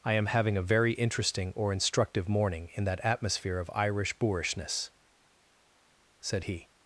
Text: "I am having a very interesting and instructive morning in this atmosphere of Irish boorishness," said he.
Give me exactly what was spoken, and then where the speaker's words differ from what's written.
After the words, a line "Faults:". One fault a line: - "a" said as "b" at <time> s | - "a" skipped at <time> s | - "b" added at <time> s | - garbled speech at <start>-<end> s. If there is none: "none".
"I am having a very interesting or instructive morning in that atmosphere of Irish boorishness," said he.
Faults:
- "and" said as "or" at 1.6 s
- "this" said as "that" at 2.9 s